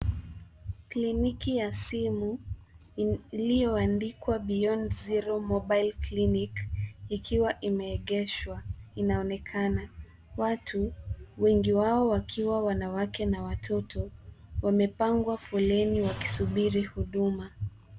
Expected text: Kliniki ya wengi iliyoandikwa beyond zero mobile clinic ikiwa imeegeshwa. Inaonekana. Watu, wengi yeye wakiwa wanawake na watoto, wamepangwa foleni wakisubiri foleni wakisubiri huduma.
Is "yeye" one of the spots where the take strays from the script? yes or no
yes